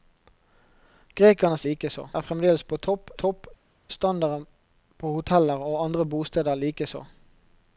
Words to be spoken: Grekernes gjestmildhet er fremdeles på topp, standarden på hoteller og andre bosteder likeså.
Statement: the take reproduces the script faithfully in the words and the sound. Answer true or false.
false